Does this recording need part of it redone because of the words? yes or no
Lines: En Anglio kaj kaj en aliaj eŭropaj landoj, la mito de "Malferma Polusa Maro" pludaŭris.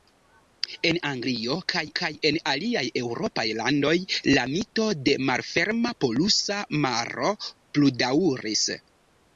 no